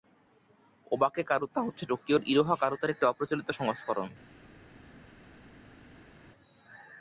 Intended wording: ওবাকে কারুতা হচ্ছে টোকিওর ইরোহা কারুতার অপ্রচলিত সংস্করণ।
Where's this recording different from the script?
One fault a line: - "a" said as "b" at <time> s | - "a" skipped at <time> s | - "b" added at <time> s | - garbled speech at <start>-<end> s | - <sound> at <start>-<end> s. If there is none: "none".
- "একটি" added at 2.9 s